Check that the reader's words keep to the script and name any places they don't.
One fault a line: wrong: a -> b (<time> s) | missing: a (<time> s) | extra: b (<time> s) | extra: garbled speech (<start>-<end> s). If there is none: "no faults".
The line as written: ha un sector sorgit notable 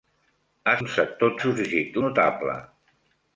no faults